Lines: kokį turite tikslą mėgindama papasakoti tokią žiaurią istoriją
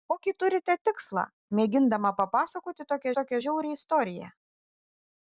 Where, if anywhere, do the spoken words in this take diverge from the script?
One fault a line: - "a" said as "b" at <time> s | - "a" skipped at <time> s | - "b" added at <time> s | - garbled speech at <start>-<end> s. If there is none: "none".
- "tokią" added at 3.2 s